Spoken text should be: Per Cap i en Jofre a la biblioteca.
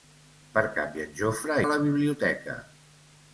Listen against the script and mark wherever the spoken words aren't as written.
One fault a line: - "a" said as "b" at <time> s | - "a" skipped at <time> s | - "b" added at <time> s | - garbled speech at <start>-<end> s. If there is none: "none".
none